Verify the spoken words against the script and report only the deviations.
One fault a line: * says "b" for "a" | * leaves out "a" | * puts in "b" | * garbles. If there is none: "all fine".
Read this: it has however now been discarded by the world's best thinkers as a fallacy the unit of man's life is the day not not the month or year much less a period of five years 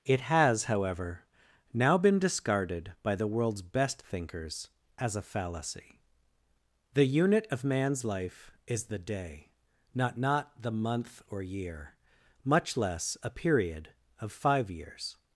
all fine